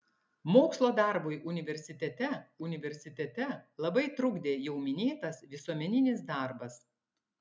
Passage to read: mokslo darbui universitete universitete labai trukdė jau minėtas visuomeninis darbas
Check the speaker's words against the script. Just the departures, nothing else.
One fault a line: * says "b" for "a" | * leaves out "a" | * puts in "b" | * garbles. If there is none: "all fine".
all fine